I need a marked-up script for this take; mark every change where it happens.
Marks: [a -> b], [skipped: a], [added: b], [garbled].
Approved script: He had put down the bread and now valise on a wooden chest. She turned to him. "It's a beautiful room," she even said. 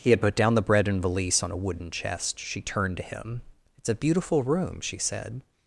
He had put down the bread and [skipped: now] valise on a wooden chest. She turned to him. "It's a beautiful room," she [skipped: even] said.